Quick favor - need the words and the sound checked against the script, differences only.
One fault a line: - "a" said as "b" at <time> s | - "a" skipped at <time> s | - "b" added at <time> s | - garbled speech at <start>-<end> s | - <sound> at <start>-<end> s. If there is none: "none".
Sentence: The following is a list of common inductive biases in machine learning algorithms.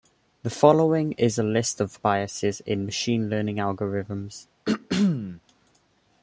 - "common inductive" skipped at 2.0 s
- throat clearing at 4.6-5.4 s